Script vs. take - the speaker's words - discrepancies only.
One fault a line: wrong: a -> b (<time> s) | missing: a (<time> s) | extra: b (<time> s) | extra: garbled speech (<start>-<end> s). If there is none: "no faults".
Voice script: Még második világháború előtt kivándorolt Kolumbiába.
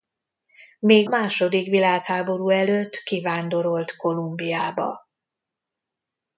no faults